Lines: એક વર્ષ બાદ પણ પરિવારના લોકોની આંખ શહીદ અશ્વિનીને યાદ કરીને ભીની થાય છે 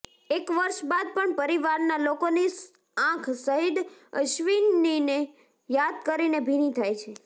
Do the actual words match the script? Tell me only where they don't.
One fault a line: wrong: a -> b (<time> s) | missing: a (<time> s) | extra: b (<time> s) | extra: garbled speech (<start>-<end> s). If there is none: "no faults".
no faults